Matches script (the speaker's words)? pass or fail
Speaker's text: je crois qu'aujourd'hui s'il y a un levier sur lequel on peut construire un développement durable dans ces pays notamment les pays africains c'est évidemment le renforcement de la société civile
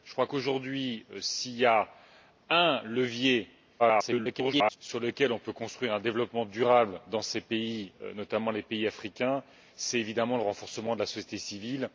fail